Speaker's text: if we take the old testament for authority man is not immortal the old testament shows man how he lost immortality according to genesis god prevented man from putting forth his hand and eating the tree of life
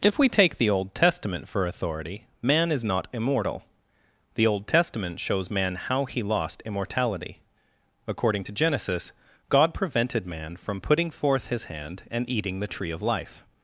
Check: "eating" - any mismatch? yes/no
no